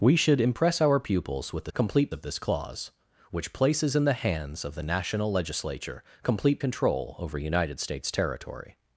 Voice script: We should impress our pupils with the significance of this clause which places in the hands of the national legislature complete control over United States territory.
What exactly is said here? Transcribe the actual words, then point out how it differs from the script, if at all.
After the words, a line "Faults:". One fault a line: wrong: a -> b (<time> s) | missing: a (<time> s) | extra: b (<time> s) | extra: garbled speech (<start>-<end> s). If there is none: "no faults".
We should impress our pupils with the complete of this clause which places in the hands of the national legislature complete control over United States territory.
Faults:
wrong: significance -> complete (1.7 s)